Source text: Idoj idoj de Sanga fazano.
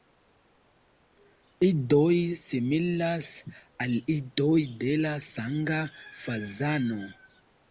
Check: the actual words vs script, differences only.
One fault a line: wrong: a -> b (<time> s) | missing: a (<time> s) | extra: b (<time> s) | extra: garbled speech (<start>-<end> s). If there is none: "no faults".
extra: similas al (2.5 s)
extra: la (5.0 s)